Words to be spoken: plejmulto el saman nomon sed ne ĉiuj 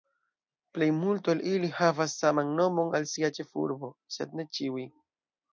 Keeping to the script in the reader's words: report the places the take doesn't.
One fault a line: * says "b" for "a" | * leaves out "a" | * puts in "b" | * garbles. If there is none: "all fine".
* puts in "ili havas"
* puts in "al sia ĉefurbo"